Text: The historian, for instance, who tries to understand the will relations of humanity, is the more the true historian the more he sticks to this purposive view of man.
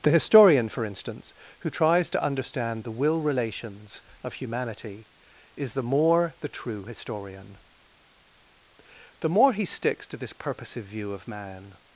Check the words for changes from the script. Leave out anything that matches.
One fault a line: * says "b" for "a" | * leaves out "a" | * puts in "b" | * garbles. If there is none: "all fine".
all fine